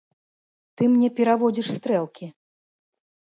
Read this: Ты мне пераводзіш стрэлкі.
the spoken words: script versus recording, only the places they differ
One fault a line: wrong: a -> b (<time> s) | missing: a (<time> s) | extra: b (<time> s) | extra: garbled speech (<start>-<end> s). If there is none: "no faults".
no faults